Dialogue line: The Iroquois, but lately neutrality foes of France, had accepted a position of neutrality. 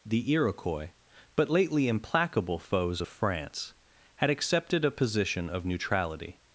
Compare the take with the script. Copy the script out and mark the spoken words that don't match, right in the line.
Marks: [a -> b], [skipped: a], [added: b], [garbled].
The Iroquois, but lately [neutrality -> implacable] foes of France, had accepted a position of neutrality.